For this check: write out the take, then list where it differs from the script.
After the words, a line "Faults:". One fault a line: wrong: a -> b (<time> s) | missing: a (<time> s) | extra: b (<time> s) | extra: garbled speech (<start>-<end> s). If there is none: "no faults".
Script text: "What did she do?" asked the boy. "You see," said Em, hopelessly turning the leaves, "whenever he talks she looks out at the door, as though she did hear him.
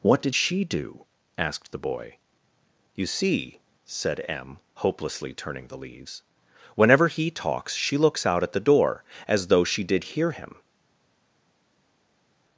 "What did she do?" asked the boy. "You see," said Em, hopelessly turning the leaves, "whenever he talks she looks out at the door, as though she did hear him.
Faults:
no faults